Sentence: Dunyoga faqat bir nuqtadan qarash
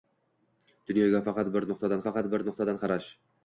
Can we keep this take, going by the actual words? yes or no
no